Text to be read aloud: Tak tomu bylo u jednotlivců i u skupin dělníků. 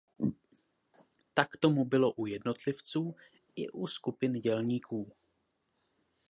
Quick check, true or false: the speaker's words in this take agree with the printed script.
true